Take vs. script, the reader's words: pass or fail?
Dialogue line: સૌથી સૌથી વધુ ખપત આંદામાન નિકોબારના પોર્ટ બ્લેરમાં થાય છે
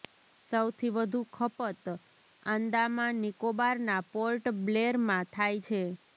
fail